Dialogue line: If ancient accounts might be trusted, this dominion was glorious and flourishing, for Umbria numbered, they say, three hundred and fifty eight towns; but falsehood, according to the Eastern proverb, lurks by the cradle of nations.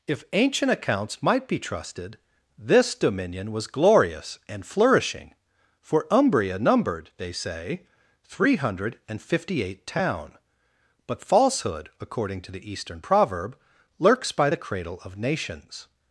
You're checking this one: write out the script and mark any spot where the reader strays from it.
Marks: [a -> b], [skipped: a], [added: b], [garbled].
If ancient accounts might be trusted, this dominion was glorious and flourishing, for Umbria numbered, they say, three hundred and fifty eight [towns; -> town] but falsehood, according to the Eastern proverb, lurks by the cradle of nations.